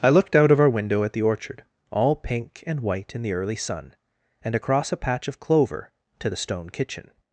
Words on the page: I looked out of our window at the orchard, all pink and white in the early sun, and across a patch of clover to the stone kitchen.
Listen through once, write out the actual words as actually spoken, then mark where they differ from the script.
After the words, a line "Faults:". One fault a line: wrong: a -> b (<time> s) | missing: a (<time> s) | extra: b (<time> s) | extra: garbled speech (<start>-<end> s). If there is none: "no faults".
I looked out of our window at the orchard, all pink and white in the early sun, and across a patch of clover to the stone kitchen.
Faults:
no faults